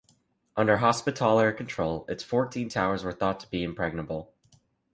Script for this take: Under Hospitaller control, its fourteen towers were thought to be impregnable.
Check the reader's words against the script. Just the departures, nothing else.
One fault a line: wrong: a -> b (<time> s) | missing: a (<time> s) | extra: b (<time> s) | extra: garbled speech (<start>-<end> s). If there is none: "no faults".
no faults